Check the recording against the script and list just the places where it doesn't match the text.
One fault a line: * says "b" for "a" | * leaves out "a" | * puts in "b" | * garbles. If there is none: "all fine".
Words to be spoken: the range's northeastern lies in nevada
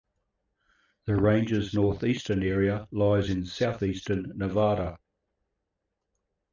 * puts in "area"
* puts in "southeastern"